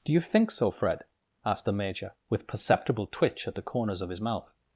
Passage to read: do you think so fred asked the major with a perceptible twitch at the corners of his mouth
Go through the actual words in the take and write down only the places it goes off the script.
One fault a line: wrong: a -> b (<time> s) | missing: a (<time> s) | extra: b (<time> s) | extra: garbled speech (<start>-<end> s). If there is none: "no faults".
missing: a (2.5 s)